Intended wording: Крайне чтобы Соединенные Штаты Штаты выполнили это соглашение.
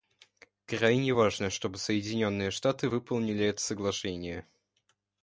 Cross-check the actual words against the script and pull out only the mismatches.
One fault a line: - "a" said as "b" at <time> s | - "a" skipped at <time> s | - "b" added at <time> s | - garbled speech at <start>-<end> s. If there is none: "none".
- "важно" added at 1.1 s
- "Штаты" skipped at 2.9 s